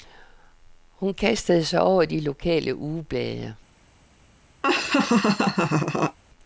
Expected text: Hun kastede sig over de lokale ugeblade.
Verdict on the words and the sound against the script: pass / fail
fail